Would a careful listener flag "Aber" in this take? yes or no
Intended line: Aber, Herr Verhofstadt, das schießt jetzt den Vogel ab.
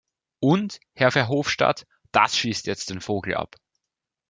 yes